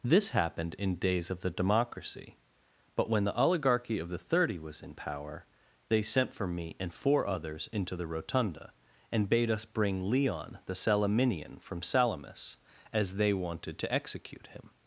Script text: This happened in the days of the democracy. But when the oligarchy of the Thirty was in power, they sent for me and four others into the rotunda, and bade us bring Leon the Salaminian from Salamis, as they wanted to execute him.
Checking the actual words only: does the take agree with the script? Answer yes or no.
no